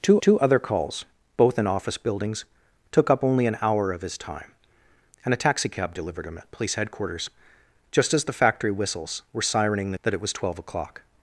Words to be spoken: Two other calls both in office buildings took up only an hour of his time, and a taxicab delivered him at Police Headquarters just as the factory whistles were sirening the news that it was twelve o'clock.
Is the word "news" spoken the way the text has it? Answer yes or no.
no